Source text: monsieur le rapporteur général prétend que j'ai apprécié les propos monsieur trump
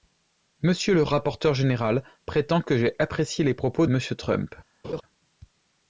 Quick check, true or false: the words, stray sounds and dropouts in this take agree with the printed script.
false